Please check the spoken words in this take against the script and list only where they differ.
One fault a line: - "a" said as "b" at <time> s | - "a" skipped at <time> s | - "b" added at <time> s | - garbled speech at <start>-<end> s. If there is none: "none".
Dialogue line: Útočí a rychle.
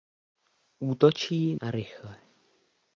none